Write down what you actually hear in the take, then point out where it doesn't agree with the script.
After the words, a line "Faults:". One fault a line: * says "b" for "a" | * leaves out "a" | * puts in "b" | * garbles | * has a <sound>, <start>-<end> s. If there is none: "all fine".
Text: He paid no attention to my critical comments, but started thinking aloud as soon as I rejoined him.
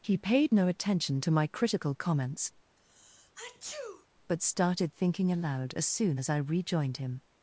He paid no attention to my critical comments, but started thinking aloud as soon as I rejoined him.
Faults:
* has a sneeze, 2.8-4.1 s